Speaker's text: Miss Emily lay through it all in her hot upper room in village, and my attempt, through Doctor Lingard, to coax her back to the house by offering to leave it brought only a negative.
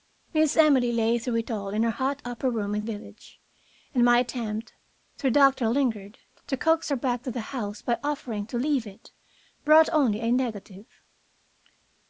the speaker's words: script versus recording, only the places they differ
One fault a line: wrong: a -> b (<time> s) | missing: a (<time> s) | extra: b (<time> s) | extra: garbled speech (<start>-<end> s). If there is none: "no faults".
no faults